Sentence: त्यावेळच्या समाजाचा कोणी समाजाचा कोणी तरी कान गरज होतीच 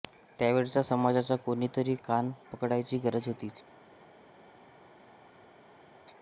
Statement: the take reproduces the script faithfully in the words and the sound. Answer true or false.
false